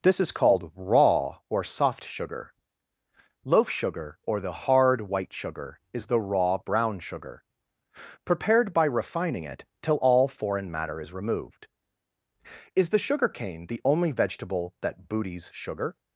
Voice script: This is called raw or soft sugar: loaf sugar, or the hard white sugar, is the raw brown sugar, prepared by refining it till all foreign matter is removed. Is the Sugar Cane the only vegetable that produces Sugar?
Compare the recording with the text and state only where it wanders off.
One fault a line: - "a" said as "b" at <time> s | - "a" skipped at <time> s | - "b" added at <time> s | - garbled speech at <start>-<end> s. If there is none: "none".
- "produces" said as "booties" at 15.1 s